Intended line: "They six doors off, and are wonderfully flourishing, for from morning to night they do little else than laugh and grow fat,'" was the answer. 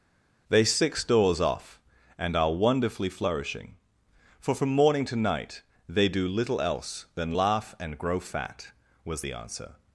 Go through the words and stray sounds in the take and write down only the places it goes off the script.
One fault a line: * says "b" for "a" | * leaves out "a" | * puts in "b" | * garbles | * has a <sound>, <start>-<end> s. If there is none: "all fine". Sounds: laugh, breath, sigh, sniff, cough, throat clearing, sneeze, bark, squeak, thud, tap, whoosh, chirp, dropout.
all fine